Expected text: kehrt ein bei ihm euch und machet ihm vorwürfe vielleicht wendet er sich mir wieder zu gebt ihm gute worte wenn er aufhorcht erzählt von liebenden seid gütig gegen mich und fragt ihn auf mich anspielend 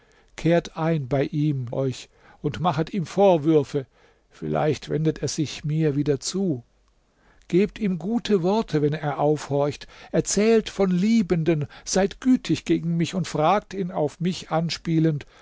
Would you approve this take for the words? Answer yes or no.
yes